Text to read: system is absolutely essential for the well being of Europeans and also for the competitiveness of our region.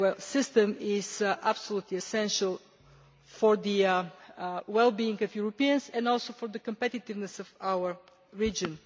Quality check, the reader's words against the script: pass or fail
pass